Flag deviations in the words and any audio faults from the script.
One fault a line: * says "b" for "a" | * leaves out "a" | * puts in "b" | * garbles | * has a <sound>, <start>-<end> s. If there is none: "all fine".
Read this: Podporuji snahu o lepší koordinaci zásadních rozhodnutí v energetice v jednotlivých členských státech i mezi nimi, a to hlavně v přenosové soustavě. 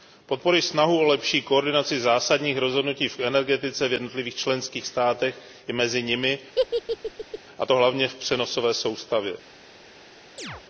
* has a laugh, 6.6-7.4 s
* has a chirp, 10.4-10.6 s